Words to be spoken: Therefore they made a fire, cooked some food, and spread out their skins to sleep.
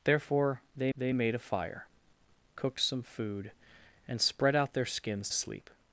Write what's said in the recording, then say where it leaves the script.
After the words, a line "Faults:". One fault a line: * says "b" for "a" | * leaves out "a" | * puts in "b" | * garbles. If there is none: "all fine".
Therefore they they made a fire, cooked some food, and spread out their skins sleep.
Faults:
* puts in "they"
* leaves out "to"